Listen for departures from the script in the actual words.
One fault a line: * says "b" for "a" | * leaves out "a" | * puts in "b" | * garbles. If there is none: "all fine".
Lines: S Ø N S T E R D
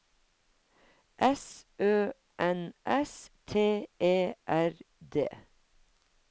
all fine